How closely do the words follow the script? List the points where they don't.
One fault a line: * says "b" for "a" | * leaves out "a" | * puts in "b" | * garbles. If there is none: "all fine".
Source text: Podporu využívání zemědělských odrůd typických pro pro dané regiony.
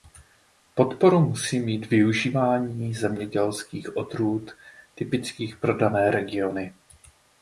* puts in "musí mít"
* leaves out "pro"